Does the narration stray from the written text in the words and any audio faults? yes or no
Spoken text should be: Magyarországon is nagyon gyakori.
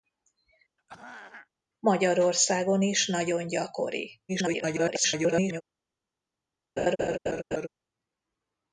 yes